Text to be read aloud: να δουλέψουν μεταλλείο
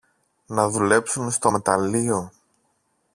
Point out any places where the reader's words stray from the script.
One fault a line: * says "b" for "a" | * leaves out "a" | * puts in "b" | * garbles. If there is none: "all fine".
* puts in "στο"